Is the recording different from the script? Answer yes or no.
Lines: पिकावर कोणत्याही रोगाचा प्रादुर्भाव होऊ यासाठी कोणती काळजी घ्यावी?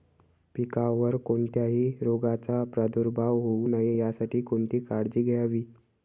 yes